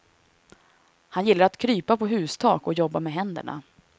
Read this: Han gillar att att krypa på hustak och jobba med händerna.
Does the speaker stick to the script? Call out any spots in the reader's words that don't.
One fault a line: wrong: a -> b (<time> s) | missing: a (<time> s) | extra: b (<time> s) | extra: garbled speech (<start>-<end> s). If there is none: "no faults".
missing: att (1.6 s)